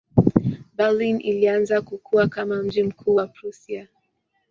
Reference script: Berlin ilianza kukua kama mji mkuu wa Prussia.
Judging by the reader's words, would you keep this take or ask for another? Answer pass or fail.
pass